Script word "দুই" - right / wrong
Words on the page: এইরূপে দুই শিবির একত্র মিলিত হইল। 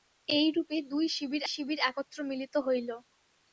right